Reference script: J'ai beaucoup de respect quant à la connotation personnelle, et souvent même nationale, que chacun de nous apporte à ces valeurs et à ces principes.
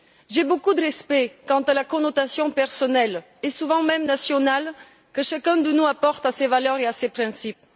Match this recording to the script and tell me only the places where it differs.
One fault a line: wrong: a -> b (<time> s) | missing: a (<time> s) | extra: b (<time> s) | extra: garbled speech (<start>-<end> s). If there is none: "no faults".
no faults